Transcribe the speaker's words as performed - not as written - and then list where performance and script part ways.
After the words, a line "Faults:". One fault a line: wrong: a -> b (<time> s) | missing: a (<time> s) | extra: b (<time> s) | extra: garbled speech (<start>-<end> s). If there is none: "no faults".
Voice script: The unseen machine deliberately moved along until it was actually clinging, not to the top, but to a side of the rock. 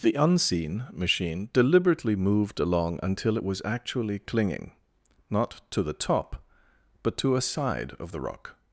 The unseen machine deliberately moved along until it was actually clinging, not to the top, but to a side of the rock.
Faults:
no faults